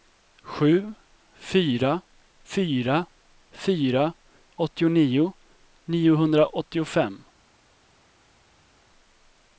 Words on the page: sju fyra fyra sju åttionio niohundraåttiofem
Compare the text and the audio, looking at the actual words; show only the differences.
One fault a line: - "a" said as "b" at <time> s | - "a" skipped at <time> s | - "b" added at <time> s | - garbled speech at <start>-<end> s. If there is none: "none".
- "sju" said as "fyra" at 3.5 s